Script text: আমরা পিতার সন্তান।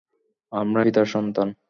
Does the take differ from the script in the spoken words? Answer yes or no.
no